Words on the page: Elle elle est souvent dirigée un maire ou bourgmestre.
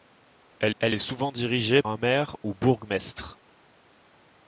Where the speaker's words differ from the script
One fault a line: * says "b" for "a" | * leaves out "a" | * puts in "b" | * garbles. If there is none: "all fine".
all fine